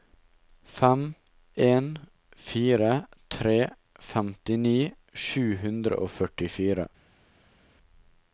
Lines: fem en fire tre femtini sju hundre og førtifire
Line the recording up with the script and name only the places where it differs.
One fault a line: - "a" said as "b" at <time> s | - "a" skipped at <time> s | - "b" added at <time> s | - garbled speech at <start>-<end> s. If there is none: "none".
none